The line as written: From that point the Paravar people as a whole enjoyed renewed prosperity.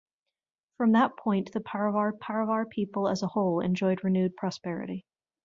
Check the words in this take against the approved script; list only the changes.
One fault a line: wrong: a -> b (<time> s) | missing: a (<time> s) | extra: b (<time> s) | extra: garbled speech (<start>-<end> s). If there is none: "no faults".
extra: Paravar (2.1 s)